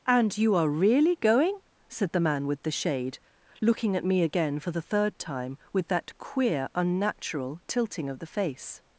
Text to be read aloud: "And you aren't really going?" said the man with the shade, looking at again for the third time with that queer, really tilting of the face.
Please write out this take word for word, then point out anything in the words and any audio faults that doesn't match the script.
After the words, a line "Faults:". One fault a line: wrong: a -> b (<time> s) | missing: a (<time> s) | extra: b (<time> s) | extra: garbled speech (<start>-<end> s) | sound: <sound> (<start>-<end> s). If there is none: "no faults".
"And you are really going?" said the man with the shade, looking at me again for the third time with that queer, unnatural tilting of the face.
Faults:
wrong: aren't -> are (0.6 s)
extra: me (4.0 s)
wrong: really -> unnatural (6.7 s)